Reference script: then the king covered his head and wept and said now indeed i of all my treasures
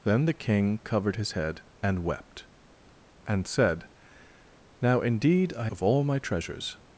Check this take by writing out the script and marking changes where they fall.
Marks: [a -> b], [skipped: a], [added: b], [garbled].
then the king covered his head and wept and said now indeed i of all my treasures